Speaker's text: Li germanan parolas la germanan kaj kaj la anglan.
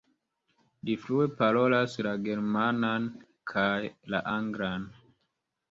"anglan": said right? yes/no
yes